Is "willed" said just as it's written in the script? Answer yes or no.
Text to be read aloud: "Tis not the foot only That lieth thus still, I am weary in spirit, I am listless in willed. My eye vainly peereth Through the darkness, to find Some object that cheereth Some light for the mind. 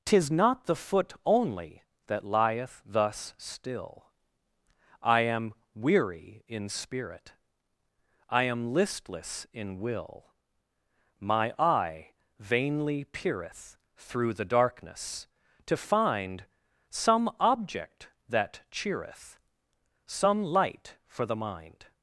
no